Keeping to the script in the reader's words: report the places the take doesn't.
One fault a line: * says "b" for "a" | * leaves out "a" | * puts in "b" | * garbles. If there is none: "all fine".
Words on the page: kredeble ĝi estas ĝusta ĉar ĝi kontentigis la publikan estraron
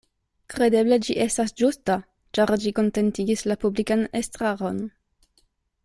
all fine